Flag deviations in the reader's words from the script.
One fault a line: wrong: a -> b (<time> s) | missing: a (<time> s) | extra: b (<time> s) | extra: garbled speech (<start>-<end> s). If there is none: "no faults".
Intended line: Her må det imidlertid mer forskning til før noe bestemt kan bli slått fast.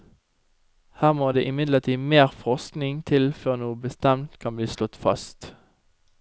no faults